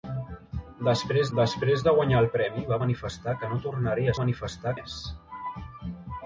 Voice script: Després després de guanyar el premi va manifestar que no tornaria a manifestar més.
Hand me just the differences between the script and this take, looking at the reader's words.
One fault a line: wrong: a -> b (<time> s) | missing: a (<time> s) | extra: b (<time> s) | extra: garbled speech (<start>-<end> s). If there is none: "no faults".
no faults